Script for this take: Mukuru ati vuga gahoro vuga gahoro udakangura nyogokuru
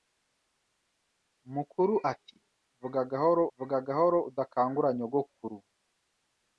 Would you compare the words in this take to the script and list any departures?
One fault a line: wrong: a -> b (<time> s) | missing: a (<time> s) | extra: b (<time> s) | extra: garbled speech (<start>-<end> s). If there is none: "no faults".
no faults